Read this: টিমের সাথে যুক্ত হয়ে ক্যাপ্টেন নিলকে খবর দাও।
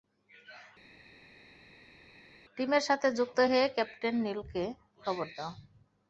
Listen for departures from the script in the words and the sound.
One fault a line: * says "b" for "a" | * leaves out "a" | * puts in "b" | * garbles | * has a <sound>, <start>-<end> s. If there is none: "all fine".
all fine